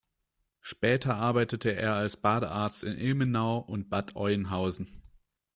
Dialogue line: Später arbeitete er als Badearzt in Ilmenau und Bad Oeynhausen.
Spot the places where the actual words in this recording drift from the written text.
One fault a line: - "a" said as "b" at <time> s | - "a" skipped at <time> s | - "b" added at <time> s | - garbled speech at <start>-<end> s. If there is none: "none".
none